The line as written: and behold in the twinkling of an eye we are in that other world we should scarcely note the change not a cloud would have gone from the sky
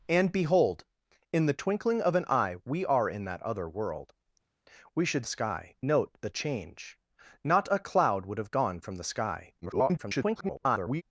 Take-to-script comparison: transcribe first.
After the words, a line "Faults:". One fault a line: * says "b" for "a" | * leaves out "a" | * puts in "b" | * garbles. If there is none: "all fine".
and behold in the twinkling of an eye we are in that other world we should sky note the change not a cloud would have gone from the sky [garbled]
Faults:
* says "sky" for "scarcely"
* garbles